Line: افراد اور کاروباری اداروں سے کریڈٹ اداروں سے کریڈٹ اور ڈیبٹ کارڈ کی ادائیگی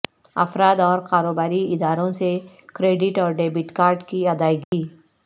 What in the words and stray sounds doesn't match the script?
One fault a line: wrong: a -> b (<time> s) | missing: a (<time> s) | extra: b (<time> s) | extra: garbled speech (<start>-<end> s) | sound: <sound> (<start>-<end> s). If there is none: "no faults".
missing: اداروں سے کریڈٹ (3.2 s)
sound: dropout (4.6-4.7 s)